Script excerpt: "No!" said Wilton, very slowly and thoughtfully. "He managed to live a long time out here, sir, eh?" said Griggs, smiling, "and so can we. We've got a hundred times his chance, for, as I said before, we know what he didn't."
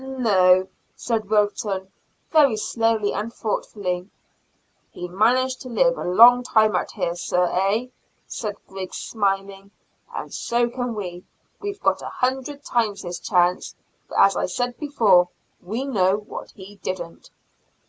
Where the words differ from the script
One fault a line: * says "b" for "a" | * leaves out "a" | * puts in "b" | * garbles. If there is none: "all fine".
all fine